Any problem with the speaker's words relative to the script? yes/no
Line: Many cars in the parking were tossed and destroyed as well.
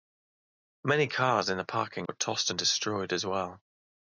no